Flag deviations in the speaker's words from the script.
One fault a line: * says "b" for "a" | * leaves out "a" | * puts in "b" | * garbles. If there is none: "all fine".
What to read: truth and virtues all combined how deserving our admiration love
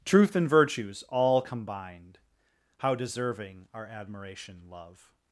all fine